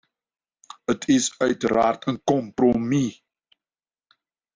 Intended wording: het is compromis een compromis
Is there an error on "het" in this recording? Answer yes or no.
no